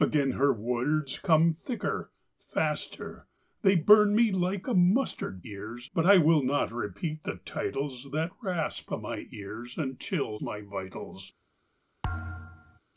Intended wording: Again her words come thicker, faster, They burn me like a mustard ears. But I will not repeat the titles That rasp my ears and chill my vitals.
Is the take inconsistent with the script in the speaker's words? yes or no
no